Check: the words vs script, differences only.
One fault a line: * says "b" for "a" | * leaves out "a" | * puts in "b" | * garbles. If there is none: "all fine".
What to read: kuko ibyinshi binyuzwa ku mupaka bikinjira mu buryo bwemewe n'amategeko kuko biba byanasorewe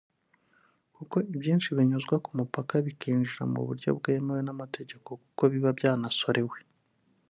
all fine